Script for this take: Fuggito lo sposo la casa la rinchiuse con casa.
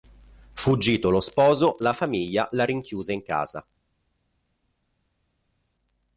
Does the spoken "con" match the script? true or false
false